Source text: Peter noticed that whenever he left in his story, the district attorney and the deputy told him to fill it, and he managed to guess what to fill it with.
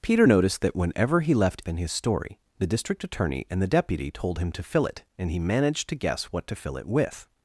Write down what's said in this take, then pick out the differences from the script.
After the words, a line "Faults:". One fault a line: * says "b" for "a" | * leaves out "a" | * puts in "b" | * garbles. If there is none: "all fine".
Peter noticed that whenever he left in his story, the district attorney and the deputy told him to fill it, and he managed to guess what to fill it with.
Faults:
all fine